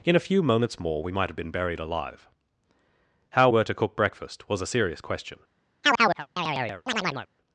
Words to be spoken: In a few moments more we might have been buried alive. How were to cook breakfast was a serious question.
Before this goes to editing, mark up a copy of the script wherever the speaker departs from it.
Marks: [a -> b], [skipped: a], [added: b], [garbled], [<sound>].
In a few moments more we might have been buried alive. How were to cook breakfast was a serious question. [chirp]